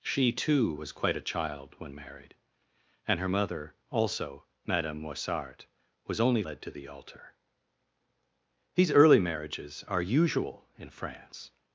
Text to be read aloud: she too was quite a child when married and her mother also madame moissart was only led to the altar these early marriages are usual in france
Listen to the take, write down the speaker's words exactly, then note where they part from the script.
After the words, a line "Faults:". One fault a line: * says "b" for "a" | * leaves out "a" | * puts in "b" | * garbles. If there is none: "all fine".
she too was quite a child when married and her mother also madame moissart was only led to the altar these early marriages are usual in france
Faults:
all fine